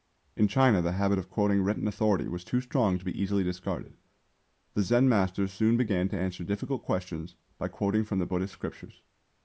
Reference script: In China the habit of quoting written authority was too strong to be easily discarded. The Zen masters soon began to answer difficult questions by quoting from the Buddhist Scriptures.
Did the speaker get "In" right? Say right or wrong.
right